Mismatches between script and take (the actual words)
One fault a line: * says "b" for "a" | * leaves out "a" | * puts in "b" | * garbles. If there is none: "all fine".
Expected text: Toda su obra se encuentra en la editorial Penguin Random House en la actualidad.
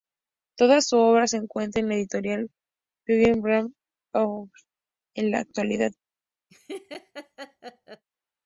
all fine